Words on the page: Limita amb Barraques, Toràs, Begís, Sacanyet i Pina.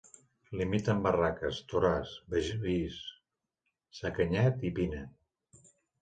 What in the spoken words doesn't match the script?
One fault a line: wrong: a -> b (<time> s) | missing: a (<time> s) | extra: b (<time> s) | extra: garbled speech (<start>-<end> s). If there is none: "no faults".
no faults